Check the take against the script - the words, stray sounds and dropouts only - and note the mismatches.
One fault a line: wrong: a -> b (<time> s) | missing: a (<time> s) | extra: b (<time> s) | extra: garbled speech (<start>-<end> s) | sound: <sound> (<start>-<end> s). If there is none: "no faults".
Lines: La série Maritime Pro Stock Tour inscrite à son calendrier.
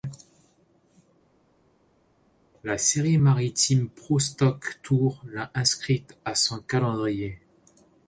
extra: l'a (5.3 s)